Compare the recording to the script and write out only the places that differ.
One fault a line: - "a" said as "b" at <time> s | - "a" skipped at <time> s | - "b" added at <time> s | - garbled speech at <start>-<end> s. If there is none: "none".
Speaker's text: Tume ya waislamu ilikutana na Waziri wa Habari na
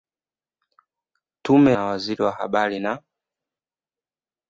- "ya waislamu ilikutana" skipped at 1.7 s